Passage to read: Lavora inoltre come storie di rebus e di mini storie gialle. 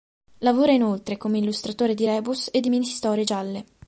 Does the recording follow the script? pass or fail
fail